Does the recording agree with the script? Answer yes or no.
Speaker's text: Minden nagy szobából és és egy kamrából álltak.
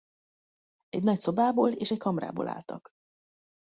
no